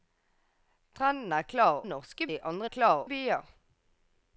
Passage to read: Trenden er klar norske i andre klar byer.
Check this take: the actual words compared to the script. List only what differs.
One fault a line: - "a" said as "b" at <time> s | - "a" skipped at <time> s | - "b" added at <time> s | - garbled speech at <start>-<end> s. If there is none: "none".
none